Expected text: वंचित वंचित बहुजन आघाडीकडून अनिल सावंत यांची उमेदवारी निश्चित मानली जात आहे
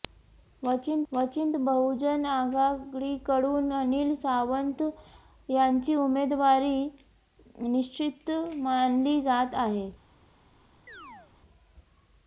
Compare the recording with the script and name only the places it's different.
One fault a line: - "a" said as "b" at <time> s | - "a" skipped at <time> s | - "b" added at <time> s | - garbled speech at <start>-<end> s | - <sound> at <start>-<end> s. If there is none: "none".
- chirp at 10.9-11.3 s